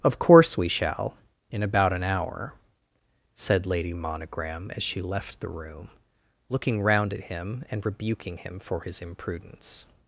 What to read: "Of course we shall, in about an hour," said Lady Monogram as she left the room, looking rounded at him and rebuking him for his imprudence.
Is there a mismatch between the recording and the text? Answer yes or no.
yes